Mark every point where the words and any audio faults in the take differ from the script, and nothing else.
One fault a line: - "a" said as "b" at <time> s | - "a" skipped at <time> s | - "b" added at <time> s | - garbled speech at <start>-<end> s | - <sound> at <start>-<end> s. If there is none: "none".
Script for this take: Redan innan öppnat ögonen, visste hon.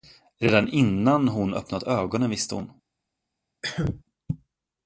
- "hon" added at 1.3 s
- cough at 3.6-4.0 s